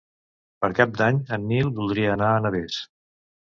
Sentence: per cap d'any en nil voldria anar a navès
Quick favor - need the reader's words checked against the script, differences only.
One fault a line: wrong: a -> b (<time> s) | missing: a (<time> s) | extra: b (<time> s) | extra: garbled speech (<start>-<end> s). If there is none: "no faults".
no faults